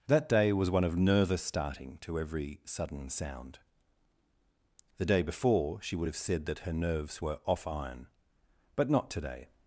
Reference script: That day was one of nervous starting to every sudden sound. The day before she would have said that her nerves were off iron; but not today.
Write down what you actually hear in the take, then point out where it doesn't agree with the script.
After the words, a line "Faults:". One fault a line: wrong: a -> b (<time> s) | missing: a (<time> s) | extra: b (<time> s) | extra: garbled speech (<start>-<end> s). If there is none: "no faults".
That day was one of nervous starting to every sudden sound. The day before she would have said that her nerves were off iron; but not today.
Faults:
no faults